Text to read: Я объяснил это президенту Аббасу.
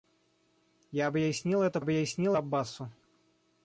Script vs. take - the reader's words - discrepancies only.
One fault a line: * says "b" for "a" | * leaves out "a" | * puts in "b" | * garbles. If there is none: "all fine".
* says "объяснил" for "президенту"